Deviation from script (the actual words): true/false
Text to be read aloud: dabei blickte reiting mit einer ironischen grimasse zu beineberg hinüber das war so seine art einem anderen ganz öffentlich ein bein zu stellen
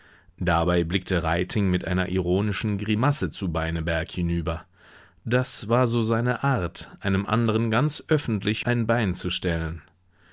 false